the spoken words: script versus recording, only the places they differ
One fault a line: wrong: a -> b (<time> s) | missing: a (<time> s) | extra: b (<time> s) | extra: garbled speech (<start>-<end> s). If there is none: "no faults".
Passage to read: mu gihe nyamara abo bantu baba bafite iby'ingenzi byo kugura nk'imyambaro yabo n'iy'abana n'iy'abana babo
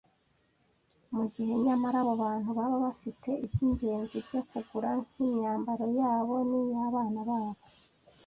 missing: n'iy'abana (7.2 s)